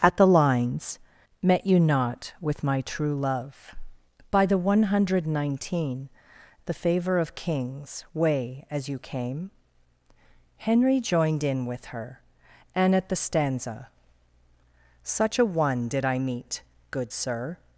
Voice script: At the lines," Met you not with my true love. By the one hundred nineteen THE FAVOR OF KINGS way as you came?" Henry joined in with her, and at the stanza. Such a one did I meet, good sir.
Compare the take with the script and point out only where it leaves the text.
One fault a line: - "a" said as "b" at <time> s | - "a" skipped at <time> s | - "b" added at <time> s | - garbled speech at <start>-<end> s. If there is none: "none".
none